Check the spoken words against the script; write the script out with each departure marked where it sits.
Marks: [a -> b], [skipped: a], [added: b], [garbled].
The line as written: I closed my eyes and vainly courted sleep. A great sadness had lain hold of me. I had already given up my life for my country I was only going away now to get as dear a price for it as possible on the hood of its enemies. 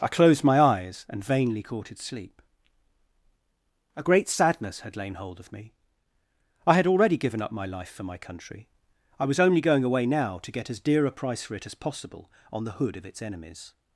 I closed my eyes and vainly courted sleep. A great sadness had lain hold of me. I had already given up my life for my country I was only going away now to get as dear a price for it as possible on the hood of its enemies.